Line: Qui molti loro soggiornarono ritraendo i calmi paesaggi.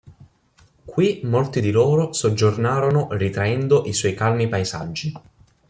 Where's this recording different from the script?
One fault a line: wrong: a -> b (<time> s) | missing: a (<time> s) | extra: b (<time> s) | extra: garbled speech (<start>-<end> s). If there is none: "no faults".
extra: di (1.6 s)
extra: suoi (3.9 s)